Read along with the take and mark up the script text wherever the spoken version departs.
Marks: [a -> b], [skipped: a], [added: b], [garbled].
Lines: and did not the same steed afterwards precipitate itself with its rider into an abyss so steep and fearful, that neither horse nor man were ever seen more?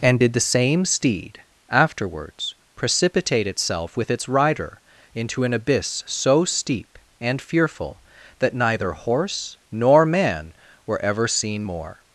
and did [skipped: not] the same steed afterwards precipitate itself with its rider into an abyss so steep and fearful, that neither horse nor man were ever seen more?